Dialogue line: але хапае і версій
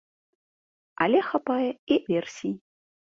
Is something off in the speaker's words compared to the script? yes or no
no